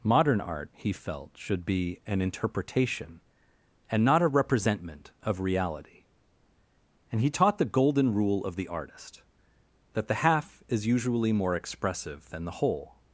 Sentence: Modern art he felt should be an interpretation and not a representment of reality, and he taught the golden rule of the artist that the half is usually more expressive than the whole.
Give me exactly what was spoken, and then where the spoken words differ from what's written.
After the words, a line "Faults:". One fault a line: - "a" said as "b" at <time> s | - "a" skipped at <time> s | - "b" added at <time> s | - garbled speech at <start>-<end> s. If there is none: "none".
Modern art he felt should be an interpretation and not a representment of reality, and he taught the golden rule of the artist that the half is usually more expressive than the whole.
Faults:
none